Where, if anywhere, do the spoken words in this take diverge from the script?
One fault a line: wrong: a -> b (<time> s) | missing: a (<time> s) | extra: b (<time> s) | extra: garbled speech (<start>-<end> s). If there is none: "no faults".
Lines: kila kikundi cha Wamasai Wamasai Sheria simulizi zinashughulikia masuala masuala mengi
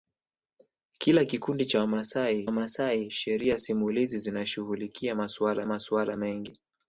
no faults